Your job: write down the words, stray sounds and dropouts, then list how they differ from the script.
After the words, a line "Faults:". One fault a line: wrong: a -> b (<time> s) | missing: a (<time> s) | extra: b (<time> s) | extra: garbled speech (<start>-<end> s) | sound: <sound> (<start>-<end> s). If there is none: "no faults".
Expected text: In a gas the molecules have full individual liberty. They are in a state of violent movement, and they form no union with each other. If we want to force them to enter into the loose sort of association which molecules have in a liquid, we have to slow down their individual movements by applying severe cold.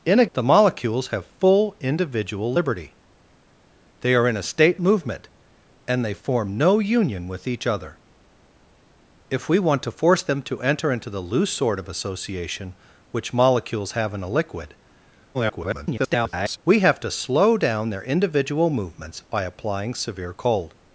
In a the molecules have full individual liberty. They are in a state movement, and they form no union with each other. If we want to force them to enter into the loose sort of association which molecules have in a liquid, [garbled] we have to slow down their individual movements by applying severe cold.
Faults:
missing: gas (0.2 s)
missing: of violent (4.8 s)
extra: garbled speech (15.3-16.6 s)